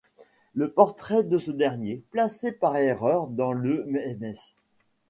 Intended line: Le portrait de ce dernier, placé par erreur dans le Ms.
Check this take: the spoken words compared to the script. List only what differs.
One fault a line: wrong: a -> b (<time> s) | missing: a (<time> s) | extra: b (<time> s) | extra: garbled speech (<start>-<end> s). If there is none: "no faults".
no faults